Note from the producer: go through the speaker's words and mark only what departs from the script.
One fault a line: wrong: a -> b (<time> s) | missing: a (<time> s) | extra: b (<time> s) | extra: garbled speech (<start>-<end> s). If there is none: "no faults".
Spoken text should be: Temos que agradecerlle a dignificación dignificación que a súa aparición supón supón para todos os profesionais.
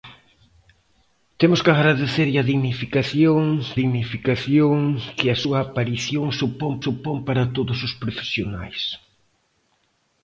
no faults